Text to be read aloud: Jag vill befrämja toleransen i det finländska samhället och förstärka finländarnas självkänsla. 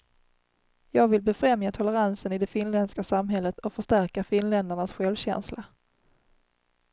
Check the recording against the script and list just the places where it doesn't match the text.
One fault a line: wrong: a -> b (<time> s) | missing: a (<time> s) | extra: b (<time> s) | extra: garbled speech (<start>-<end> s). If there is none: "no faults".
no faults